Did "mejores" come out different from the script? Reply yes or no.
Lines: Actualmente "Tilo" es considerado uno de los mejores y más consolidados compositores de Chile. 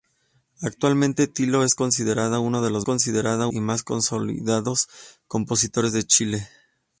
yes